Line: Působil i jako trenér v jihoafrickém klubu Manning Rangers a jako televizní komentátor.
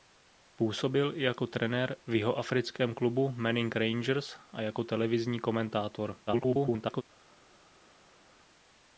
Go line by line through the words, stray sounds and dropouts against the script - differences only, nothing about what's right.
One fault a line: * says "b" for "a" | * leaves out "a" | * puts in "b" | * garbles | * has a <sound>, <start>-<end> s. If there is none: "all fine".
* garbles